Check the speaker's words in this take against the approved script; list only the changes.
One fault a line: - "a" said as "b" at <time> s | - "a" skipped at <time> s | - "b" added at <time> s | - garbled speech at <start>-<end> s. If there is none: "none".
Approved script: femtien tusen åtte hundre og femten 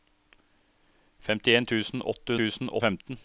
- "hundre" said as "tusen" at 2.4 s